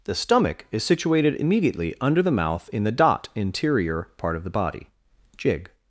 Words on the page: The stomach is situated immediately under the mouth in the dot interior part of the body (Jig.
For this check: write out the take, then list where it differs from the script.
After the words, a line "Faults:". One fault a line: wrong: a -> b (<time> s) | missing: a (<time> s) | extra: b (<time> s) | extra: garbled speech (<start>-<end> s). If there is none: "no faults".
The stomach is situated immediately under the mouth in the dot interior part of the body (Jig.
Faults:
no faults